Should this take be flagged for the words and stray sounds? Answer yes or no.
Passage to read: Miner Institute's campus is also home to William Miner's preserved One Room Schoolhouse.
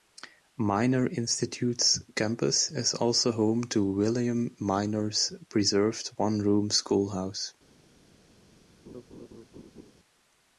yes